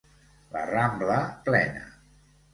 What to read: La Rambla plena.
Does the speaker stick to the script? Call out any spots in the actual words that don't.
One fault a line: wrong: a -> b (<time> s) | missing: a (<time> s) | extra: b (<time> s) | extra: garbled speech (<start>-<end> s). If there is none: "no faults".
no faults